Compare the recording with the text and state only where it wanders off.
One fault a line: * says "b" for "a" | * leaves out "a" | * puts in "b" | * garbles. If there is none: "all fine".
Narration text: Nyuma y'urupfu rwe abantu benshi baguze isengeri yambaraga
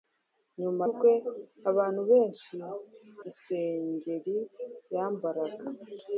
* leaves out "y'urupfu"
* leaves out "baguze"